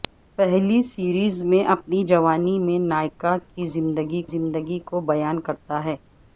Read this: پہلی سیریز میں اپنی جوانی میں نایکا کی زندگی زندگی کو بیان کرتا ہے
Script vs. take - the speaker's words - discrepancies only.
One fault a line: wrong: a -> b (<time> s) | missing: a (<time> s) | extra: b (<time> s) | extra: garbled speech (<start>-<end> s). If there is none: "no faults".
no faults